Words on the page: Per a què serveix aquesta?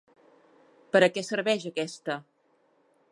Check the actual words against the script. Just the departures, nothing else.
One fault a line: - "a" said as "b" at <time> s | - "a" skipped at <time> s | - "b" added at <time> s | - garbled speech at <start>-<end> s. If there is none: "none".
none